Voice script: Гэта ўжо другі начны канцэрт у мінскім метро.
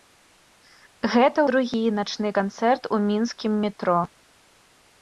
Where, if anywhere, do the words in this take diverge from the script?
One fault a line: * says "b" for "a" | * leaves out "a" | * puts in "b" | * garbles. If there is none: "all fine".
* leaves out "ўжо"